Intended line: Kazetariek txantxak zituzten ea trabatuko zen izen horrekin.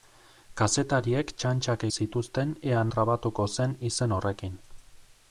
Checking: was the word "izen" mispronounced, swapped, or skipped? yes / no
no